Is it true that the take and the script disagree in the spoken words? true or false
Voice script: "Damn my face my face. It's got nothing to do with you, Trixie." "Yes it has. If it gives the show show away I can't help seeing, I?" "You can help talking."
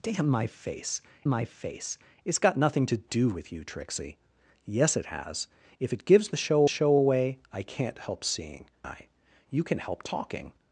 false